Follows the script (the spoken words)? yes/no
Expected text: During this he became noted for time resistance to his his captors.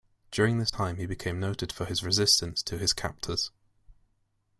no